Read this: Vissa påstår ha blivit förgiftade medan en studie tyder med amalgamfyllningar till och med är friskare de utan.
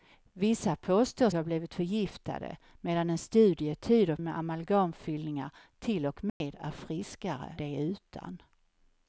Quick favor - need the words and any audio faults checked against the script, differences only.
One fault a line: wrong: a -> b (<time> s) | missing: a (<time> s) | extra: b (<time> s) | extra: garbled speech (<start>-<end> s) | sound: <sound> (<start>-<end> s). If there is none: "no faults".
sound: dropout (6.3-6.4 s)